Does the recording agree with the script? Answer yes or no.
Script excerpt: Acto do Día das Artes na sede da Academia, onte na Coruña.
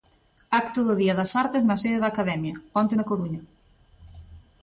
yes